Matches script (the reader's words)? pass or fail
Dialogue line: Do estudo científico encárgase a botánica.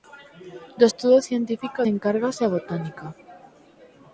pass